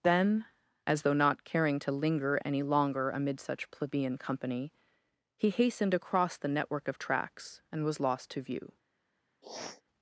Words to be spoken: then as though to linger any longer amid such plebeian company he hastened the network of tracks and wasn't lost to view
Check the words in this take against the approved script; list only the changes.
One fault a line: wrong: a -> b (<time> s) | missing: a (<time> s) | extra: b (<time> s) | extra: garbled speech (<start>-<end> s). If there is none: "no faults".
extra: not caring (1.1 s)
extra: across (5.9 s)
wrong: wasn't -> was (7.8 s)